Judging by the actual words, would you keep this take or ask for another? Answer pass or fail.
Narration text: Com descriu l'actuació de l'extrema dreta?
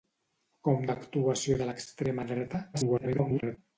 fail